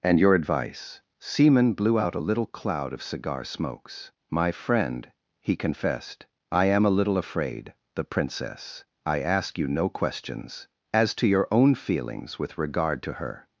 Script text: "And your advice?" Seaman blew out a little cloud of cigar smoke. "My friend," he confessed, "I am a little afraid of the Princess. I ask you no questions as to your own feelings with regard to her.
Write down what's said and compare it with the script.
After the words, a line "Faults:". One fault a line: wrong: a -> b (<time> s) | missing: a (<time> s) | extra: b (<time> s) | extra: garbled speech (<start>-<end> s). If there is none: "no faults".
"And your advice?" Seaman blew out a little cloud of cigar smokes. "My friend," he confessed, "I am a little afraid the Princess. I ask you no questions as to your own feelings with regard to her.
Faults:
wrong: smoke -> smokes (3.4 s)
missing: of (7.7 s)